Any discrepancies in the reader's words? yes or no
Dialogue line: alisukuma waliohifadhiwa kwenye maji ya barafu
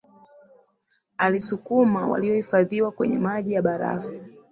no